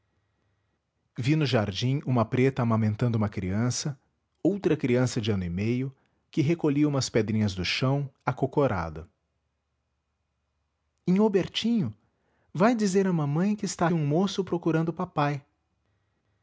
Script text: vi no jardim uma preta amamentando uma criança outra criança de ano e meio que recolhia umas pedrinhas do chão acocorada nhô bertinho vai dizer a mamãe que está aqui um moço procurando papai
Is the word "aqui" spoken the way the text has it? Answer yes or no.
no